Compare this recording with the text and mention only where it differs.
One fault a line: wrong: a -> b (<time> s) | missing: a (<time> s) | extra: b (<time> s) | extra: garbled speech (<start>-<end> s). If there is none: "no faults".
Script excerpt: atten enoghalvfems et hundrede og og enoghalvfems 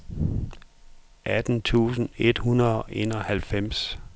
wrong: enoghalvfems -> tusind (1.6 s)
missing: og (2.9 s)